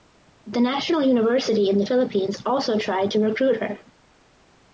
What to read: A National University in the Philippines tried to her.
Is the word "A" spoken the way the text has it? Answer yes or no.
no